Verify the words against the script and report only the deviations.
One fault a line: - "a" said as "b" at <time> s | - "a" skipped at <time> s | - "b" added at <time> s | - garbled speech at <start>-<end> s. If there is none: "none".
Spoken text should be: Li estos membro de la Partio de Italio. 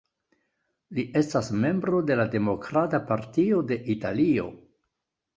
- "estos" said as "estas" at 1.2 s
- "Demokrata" added at 2.4 s